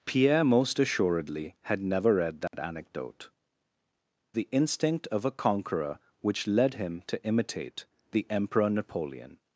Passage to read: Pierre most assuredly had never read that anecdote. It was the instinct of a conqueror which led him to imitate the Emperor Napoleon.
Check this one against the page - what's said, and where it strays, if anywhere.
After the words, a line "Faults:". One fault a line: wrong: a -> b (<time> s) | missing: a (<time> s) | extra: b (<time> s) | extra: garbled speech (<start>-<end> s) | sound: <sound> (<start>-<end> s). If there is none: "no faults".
Pierre most assuredly had never read that anecdote. The instinct of a conqueror which led him to imitate the Emperor Napoleon.
Faults:
sound: dropout (2.5-2.5 s)
missing: It was (3.3 s)